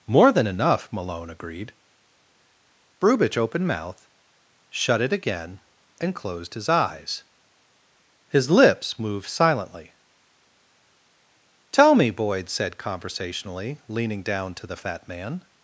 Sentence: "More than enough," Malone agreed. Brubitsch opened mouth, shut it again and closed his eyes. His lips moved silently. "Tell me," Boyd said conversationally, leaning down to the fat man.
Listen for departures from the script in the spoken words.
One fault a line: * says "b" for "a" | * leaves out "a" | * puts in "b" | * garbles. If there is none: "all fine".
all fine